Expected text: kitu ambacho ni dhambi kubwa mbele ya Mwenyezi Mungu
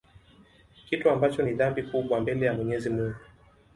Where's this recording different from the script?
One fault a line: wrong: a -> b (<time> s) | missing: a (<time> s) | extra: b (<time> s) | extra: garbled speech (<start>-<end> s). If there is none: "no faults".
no faults